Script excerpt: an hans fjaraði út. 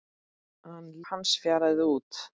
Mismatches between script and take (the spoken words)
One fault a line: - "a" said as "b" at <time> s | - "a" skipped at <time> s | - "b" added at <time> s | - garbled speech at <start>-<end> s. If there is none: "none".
none